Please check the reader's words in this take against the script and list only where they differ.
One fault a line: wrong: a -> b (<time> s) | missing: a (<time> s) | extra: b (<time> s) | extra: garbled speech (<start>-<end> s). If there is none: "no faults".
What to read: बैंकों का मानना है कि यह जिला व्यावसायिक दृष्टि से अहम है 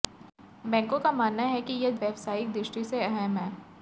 missing: जिला (1.9 s)